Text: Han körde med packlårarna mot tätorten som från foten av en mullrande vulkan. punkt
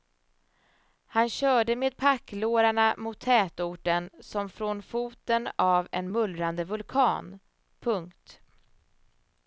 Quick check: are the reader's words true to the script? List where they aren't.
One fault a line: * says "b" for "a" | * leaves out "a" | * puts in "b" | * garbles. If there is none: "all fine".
all fine